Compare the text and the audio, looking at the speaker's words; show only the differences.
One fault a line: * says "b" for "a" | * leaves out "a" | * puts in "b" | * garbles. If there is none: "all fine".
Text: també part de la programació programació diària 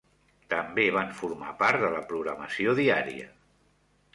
* puts in "van formar"
* leaves out "programació"